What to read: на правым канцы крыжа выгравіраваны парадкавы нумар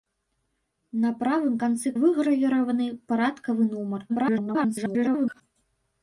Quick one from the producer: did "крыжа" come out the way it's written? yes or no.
no